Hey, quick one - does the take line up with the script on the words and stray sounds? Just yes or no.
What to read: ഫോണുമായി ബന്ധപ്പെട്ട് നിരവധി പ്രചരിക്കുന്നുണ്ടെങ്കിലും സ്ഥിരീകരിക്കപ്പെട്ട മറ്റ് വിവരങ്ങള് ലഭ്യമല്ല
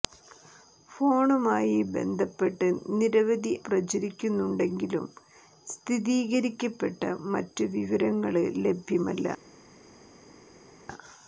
yes